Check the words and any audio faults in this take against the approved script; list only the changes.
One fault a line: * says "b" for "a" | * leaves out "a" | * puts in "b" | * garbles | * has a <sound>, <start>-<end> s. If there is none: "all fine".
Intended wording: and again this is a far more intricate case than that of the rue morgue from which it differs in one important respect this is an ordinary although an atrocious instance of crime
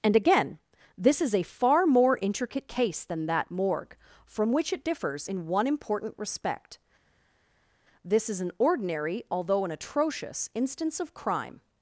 * leaves out "of the rue"